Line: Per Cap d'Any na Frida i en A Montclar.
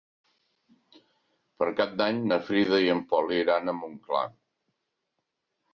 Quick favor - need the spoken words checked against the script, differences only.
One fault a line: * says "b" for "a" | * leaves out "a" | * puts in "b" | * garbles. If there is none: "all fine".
* puts in "Pol iran"